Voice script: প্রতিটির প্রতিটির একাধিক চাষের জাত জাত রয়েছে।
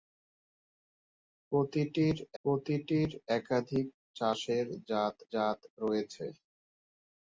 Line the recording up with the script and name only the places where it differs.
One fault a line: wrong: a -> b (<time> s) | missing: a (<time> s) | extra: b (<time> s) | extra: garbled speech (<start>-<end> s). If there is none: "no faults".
no faults